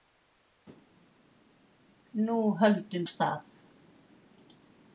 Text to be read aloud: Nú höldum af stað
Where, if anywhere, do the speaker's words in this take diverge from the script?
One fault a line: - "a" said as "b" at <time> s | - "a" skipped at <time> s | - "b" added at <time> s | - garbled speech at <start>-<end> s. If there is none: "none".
none